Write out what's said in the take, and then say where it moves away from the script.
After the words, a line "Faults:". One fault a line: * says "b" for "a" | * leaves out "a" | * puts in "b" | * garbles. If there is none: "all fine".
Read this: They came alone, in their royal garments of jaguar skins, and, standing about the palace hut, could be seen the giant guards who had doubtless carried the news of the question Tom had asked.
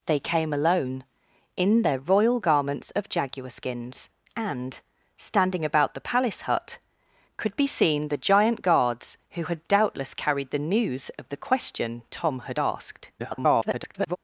They came alone, in their royal garments of jaguar skins, and, standing about the palace hut, could be seen the giant guards who had doubtless carried the news of the question Tom had asked. [garbled]
Faults:
* garbles